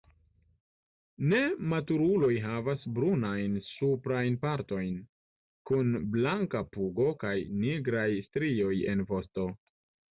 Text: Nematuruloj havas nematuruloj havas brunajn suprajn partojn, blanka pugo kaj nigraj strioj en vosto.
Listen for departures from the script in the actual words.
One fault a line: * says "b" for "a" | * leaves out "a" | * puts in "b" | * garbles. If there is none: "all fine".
* leaves out "nematuruloj havas"
* puts in "kun"